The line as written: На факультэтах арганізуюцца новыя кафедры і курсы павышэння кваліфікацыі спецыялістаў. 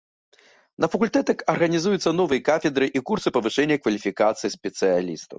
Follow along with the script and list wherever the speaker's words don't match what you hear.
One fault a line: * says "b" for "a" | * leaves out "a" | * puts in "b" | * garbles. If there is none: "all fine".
all fine